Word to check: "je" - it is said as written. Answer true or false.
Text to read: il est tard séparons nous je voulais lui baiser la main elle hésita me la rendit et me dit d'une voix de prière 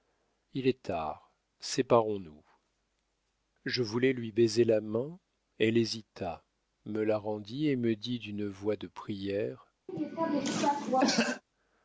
true